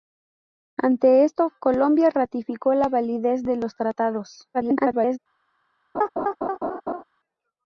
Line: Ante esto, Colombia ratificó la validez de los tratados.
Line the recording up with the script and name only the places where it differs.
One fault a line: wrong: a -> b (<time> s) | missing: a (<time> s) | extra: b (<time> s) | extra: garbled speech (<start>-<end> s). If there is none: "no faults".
extra: garbled speech (4.5-5.2 s)